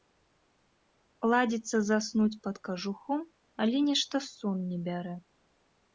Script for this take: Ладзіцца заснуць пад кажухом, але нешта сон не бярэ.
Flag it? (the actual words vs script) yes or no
no